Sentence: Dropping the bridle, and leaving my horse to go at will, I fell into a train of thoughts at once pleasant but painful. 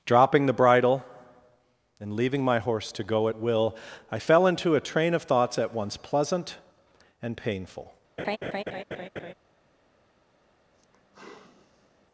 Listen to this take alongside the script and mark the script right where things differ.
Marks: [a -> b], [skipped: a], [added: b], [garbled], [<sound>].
Dropping the bridle, and leaving my horse to go at will, I fell into a train of thoughts at once pleasant [but -> and] painful. [laugh] [sigh]